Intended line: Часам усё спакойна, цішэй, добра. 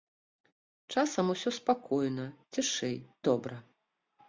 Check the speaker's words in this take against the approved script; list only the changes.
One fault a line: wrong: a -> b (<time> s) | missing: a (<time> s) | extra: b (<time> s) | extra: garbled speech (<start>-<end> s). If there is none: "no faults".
no faults